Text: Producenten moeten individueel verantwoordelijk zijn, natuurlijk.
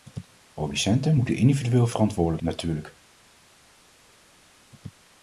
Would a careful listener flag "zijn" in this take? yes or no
yes